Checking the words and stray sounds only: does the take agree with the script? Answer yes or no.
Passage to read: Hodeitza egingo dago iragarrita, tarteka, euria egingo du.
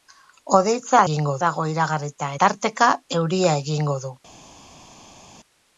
yes